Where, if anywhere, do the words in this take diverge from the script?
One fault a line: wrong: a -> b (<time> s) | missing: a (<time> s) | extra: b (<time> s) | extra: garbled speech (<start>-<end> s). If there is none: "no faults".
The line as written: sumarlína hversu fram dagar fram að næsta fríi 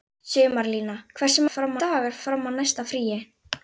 no faults